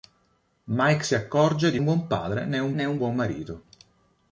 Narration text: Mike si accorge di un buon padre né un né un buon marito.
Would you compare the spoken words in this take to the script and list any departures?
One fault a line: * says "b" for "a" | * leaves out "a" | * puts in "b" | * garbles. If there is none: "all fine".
all fine